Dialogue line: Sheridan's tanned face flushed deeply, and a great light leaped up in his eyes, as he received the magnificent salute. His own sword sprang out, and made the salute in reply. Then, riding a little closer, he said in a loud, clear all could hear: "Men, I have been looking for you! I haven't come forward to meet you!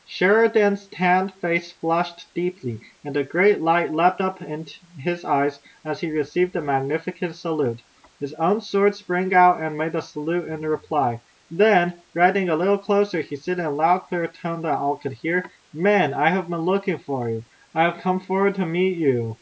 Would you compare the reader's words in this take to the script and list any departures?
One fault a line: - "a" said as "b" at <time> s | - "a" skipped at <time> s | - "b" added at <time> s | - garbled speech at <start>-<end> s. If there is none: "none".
- "tone that" added at 14.3 s
- "haven't" said as "have" at 17.8 s